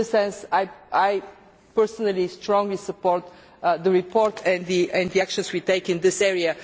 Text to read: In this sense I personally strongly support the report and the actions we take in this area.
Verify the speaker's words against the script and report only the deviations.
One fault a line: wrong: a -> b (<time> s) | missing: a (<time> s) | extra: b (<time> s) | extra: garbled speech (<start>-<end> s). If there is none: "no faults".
no faults